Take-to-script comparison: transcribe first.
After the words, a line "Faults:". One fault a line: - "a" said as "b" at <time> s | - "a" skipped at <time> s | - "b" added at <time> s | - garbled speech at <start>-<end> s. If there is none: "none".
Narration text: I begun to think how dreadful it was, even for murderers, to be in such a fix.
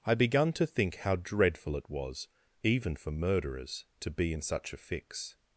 I begun to think how dreadful it was, even for murderers, to be in such a fix.
Faults:
none